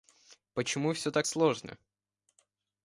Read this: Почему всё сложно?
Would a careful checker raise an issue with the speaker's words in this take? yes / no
yes